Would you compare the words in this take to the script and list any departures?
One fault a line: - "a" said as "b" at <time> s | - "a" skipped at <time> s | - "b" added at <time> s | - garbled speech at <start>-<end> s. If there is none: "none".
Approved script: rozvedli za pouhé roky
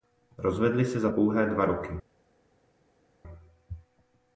- "se" added at 0.8 s
- "dva" added at 1.5 s